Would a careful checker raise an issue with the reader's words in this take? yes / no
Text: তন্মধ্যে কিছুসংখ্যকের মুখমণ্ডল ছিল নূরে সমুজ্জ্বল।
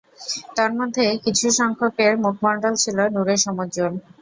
no